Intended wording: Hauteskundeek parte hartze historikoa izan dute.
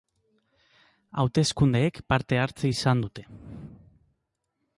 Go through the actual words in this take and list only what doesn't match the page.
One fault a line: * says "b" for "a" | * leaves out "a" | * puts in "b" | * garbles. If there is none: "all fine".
* leaves out "historikoa"